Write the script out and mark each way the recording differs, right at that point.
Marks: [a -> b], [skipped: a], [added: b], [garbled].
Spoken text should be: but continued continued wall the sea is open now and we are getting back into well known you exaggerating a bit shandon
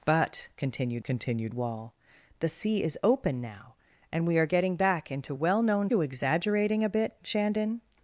but continued continued wall the sea is open now and we are getting back into well known you exaggerating a bit shandon